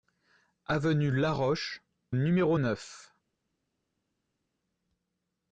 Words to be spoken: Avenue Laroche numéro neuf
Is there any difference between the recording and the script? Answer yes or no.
no